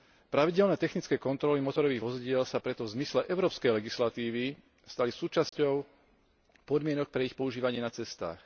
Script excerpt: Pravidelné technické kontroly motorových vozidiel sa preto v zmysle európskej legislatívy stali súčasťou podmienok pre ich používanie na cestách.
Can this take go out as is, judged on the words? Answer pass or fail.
pass